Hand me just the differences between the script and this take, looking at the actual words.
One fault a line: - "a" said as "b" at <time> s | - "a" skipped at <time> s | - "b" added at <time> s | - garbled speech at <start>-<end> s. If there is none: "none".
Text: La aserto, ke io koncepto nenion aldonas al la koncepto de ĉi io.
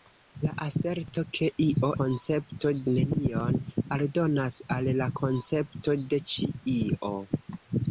none